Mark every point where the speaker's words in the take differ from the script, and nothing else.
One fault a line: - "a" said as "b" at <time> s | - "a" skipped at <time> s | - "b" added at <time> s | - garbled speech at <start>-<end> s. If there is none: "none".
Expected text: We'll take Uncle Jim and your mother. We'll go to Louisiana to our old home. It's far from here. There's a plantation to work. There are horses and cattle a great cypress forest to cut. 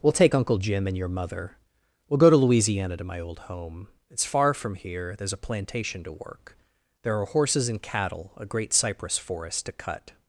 - "our" said as "my" at 3.0 s